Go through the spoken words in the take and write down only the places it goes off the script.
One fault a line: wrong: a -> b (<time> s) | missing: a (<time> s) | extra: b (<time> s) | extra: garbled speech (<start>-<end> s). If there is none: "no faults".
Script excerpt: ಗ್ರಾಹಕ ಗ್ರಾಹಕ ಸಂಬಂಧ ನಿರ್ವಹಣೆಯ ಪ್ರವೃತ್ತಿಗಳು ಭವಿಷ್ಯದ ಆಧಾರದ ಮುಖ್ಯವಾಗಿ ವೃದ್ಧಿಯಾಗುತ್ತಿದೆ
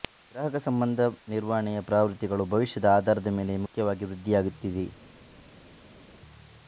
missing: ಗ್ರಾಹಕ (0.6 s)
extra: ಮೇಲೆ (3.4 s)